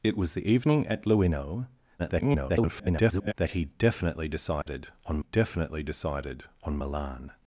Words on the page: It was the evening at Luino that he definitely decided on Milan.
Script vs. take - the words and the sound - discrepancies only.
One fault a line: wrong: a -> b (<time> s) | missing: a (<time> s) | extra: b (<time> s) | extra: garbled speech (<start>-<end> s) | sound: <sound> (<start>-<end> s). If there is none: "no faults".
extra: garbled speech (2.0-3.3 s)
sound: dropout (4.6-4.7 s)
extra: definitely decided on (5.2 s)